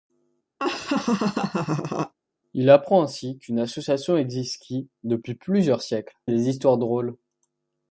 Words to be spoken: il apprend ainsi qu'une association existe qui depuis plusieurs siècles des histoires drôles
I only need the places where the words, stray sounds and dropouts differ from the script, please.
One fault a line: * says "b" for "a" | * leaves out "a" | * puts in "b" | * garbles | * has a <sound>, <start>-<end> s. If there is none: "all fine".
* has a laugh, 0.6-2.1 s